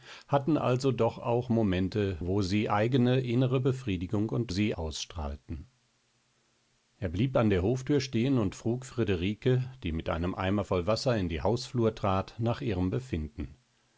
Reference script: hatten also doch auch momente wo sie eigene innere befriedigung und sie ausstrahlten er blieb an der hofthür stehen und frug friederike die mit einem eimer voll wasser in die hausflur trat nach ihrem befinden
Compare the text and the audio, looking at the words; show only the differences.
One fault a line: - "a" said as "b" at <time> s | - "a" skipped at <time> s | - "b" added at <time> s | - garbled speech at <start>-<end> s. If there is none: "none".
none